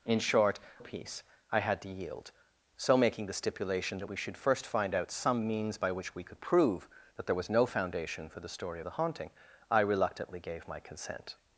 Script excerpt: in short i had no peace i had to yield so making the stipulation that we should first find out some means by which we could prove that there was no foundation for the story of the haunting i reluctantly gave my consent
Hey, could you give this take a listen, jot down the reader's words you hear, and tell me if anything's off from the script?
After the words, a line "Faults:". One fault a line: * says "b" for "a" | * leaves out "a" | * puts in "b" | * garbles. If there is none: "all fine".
in short peace i had to yield so making the stipulation that we should first find out some means by which we could prove that there was no foundation for the story the haunting i reluctantly gave my consent
Faults:
* leaves out "i had no"
* leaves out "of"